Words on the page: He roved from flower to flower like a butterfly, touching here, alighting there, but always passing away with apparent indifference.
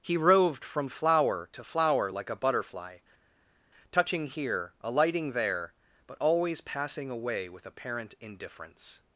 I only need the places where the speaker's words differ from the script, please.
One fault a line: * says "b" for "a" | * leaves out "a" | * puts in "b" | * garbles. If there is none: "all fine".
all fine